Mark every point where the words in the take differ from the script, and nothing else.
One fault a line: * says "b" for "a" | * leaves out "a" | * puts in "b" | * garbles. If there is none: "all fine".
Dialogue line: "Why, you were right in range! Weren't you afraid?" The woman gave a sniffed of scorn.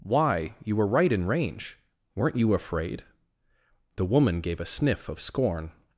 * says "sniff" for "sniffed"